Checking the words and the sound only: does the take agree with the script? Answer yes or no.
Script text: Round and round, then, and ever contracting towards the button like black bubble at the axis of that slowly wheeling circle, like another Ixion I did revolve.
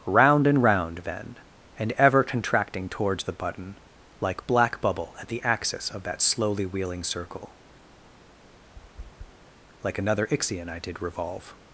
no